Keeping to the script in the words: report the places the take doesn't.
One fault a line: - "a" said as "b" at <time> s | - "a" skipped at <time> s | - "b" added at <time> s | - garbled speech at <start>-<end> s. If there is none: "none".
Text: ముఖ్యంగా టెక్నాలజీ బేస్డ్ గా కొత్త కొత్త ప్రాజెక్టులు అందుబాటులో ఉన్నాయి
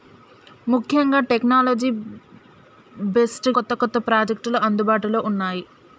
- "గా" skipped at 3.5 s